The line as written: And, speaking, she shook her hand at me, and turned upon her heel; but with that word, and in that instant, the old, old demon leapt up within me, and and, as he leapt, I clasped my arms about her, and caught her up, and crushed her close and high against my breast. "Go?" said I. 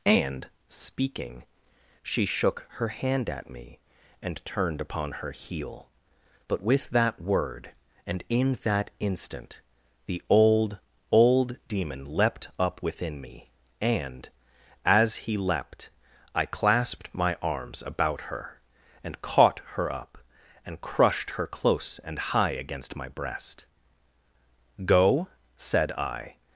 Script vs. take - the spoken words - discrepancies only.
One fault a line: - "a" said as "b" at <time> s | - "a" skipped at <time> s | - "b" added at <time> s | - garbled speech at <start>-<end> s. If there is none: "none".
- "and" skipped at 14.3 s